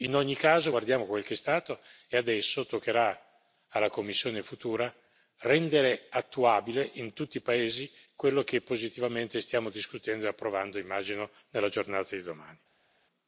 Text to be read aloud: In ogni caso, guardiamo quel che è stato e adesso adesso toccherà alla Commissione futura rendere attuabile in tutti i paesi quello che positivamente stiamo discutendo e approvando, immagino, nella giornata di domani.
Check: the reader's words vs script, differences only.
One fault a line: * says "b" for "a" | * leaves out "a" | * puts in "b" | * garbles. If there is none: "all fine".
* leaves out "adesso"